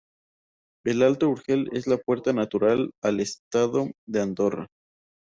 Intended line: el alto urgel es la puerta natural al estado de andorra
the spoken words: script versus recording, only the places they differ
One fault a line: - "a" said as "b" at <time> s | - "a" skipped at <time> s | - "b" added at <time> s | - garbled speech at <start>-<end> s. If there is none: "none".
none